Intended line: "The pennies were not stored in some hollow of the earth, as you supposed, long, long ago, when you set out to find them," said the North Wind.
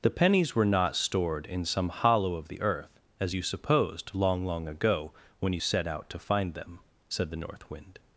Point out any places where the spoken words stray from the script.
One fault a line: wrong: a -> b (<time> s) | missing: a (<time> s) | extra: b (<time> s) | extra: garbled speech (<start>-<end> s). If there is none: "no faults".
no faults